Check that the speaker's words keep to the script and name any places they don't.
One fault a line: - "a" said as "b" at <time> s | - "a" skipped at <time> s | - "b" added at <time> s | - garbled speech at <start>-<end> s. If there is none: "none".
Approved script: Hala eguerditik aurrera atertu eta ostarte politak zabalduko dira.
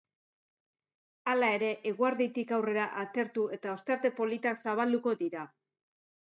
- "ere" added at 1.6 s